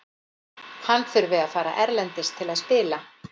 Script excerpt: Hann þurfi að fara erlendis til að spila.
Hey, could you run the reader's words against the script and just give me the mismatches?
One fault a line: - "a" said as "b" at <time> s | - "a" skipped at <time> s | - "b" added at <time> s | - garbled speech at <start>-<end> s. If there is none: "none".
none